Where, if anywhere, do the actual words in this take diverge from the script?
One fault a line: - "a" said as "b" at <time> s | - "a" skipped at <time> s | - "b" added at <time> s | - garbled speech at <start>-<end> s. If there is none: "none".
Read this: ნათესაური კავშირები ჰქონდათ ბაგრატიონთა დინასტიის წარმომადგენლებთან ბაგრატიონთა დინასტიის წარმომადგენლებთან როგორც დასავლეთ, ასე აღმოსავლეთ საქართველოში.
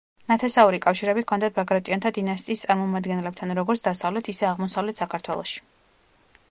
- "ბაგრატიონთა დინასტიის წარმომადგენლებთან" skipped at 3.5 s
- "ასე" said as "ისე" at 4.3 s